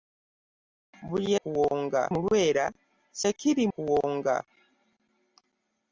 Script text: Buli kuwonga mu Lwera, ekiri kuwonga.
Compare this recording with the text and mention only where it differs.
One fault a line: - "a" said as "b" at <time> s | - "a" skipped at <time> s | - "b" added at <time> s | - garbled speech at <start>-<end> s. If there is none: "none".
none